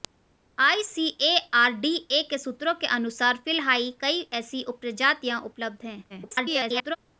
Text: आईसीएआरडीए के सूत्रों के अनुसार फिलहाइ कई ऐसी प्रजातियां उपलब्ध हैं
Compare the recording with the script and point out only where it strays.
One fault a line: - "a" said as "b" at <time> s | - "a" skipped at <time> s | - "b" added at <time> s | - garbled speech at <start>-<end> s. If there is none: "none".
- garbled speech at 6.1-7.0 s